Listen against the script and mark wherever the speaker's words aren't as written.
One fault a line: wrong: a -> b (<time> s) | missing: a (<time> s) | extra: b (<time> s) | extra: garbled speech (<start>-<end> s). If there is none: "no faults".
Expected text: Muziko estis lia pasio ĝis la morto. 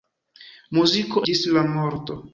missing: estis lia pasio (1.2 s)